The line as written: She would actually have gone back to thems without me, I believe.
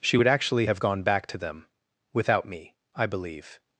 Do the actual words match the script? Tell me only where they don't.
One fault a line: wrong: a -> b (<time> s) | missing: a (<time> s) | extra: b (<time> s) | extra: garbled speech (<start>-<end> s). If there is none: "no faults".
wrong: thems -> them (1.4 s)